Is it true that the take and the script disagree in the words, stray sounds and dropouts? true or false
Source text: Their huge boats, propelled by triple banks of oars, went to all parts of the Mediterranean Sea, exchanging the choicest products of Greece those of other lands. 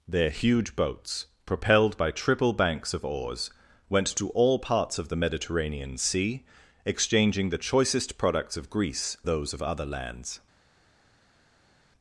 false